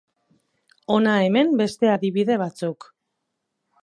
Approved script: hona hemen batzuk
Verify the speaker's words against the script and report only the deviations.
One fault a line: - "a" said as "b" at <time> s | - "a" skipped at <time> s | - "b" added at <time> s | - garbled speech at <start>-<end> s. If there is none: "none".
- "beste adibide" added at 1.6 s